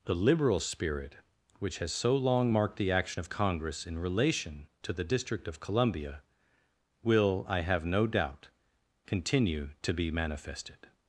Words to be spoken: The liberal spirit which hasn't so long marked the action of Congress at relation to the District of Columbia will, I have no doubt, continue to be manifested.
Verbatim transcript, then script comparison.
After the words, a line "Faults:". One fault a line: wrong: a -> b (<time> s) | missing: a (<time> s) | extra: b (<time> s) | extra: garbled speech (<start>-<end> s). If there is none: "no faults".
The liberal spirit which has so long marked the action of Congress in relation to the District of Columbia will, I have no doubt, continue to be manifested.
Faults:
wrong: hasn't -> has (1.8 s)
wrong: at -> in (3.9 s)